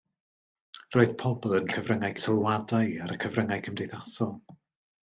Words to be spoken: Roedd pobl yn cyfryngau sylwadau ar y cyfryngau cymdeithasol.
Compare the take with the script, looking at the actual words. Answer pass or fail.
pass